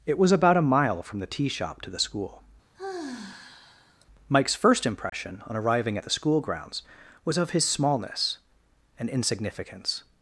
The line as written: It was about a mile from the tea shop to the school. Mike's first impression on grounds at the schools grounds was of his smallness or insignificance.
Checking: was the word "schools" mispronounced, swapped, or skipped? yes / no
yes